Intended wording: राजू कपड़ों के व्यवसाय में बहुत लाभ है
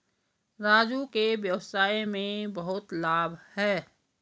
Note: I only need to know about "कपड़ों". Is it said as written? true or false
false